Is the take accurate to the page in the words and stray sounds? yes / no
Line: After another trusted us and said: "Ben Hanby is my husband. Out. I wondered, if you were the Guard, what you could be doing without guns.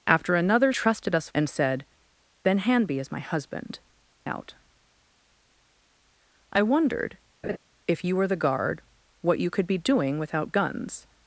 no